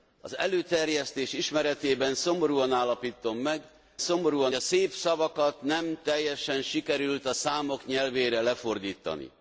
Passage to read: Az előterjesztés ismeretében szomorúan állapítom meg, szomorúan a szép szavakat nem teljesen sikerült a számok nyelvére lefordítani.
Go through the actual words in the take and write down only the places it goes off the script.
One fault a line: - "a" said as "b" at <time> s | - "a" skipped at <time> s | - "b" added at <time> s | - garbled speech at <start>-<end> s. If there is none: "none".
none